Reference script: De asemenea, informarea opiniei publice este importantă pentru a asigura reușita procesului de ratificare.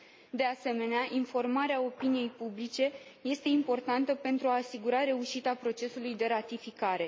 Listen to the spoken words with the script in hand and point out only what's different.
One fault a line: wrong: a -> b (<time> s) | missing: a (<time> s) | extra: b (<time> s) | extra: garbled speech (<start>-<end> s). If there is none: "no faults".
no faults